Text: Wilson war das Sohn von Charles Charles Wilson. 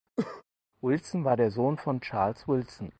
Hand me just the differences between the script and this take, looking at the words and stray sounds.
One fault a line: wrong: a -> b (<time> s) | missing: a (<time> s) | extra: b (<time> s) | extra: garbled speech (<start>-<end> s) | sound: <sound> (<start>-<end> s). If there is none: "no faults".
sound: cough (0.2-0.4 s)
wrong: das -> der (1.4 s)
missing: Charles (2.5 s)